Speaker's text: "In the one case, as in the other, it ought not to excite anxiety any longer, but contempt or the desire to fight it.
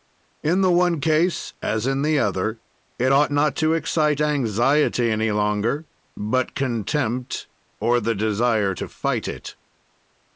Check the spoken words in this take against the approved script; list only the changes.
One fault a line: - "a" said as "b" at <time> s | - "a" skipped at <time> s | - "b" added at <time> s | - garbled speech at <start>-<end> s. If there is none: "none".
none